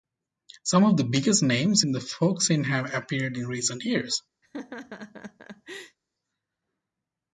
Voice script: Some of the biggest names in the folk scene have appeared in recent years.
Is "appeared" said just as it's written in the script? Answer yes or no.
yes